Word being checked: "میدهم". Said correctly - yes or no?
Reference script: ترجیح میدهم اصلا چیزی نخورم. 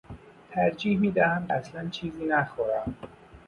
yes